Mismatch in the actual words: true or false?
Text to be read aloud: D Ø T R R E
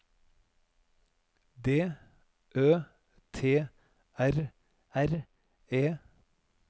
false